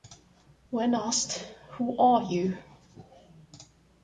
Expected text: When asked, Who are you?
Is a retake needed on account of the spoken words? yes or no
no